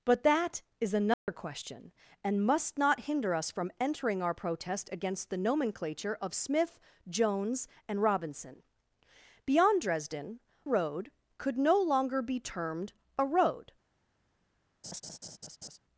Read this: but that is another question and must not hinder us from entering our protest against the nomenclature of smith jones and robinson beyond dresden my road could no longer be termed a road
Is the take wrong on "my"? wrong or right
wrong